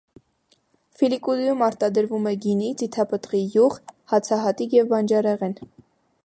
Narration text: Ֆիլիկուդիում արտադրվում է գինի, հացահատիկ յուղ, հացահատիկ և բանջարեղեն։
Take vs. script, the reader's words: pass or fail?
fail